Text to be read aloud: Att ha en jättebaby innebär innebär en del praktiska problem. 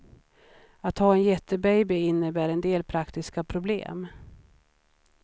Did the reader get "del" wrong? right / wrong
right